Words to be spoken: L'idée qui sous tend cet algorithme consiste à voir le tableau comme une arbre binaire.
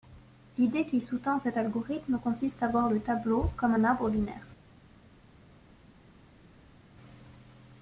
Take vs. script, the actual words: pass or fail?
fail